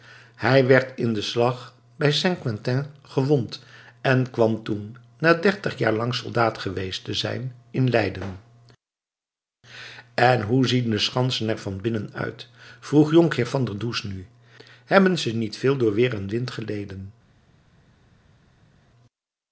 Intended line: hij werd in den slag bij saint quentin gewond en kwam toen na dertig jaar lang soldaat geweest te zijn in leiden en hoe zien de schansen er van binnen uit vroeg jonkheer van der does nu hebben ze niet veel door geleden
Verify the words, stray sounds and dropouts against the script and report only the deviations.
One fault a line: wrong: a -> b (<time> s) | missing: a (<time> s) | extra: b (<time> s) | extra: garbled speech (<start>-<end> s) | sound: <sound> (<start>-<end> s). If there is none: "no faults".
extra: weer en wind (15.9 s)